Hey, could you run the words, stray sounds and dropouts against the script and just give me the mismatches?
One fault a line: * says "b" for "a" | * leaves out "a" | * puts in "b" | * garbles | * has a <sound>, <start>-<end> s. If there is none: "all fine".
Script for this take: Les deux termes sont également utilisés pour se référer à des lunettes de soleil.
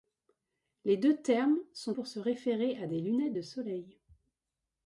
* leaves out "également utilisés"